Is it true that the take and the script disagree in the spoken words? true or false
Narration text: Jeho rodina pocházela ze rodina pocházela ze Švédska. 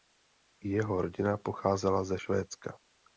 true